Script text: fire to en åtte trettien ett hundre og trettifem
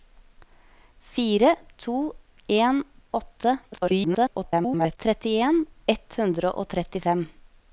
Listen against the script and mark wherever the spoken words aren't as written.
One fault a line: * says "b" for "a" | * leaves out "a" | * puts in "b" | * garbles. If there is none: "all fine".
* garbles